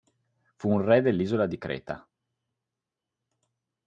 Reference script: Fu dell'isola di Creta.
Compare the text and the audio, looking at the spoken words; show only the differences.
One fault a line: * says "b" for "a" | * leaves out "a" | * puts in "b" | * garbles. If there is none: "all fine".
* puts in "un re"